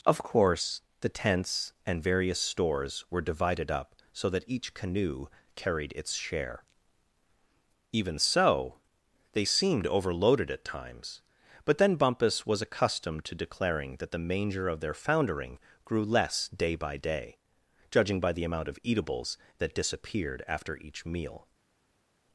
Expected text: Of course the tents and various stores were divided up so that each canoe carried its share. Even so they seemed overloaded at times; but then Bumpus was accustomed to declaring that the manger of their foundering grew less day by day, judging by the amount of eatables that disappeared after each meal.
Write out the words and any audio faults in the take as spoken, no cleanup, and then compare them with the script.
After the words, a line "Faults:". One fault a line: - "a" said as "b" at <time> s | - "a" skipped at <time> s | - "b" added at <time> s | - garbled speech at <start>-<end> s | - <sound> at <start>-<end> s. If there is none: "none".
Of course the tents and various stores were divided up so that each canoe carried its share. Even so they seemed overloaded at times; but then Bumpus was accustomed to declaring that the manger of their foundering grew less day by day, judging by the amount of eatables that disappeared after each meal.
Faults:
none